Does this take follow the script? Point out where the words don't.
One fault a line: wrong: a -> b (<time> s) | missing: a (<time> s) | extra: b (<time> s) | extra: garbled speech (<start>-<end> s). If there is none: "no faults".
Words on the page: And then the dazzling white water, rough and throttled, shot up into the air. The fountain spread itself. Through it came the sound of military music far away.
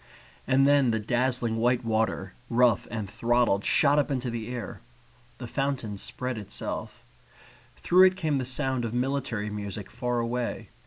no faults